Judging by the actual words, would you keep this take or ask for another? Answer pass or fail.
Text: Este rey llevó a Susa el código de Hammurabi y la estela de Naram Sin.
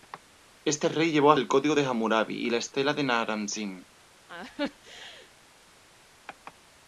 fail